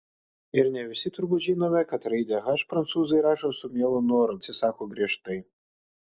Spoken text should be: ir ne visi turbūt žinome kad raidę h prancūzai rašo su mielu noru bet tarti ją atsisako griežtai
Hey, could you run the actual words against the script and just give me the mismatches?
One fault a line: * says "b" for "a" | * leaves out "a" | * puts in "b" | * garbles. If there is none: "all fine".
* leaves out "bet tarti ją"